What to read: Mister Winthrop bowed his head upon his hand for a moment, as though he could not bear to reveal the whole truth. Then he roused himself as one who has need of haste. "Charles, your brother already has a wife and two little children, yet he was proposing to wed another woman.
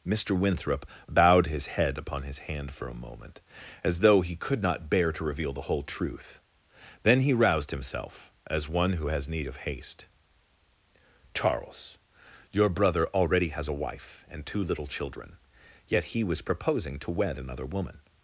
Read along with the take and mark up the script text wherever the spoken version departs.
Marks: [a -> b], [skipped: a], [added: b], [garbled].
Mister Winthrop bowed his head upon his hand for a moment, as though he could not bear to reveal the whole truth. Then he roused himself as one who has need of haste. "Charles, your brother already has a wife and two little children, yet he was proposing to wed another woman.